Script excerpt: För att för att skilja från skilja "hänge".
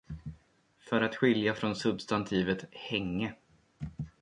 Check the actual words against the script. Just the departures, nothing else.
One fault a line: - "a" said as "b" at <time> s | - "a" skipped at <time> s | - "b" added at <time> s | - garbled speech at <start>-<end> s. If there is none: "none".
- "för att" skipped at 1.1 s
- "skilja" said as "substantivet" at 1.8 s